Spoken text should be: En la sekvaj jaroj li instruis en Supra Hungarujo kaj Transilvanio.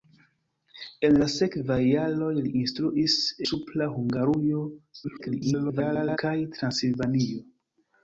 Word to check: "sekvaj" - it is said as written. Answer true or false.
true